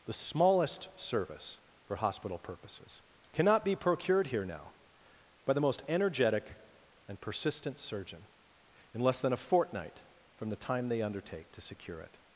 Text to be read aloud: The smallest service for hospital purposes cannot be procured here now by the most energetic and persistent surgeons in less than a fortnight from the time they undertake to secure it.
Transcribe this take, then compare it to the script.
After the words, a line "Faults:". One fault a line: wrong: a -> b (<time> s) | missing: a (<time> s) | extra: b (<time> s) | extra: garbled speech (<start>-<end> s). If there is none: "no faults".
The smallest service for hospital purposes cannot be procured here now by the most energetic and persistent surgeon in less than a fortnight from the time they undertake to secure it.
Faults:
wrong: surgeons -> surgeon (7.8 s)